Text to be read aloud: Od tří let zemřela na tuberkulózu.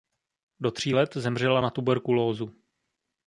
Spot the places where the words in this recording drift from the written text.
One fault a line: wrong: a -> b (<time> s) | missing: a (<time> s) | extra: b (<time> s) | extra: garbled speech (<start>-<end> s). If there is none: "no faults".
wrong: Od -> Do (0.6 s)